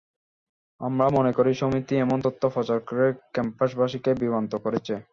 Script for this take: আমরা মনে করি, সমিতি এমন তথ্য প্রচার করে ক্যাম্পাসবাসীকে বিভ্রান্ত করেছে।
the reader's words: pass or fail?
pass